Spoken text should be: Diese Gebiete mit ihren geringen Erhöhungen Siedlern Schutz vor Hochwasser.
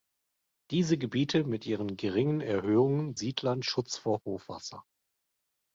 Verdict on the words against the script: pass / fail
pass